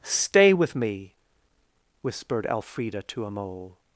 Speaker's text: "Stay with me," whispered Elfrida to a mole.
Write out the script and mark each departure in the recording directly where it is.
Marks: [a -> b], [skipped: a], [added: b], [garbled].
"Stay with me," whispered Elfrida to a mole.